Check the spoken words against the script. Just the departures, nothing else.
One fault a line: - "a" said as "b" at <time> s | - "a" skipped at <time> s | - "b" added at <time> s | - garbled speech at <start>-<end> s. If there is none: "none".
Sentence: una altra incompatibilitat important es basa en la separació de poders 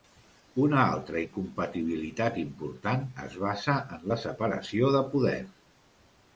none